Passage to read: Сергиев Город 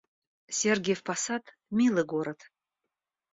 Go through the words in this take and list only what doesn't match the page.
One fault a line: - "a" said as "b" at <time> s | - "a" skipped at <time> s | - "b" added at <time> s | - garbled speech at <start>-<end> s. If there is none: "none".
- "Посад милый" added at 1.0 s